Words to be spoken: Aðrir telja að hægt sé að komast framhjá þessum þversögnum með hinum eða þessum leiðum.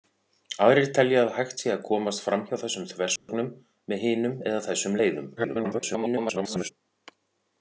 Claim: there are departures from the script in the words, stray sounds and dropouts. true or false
true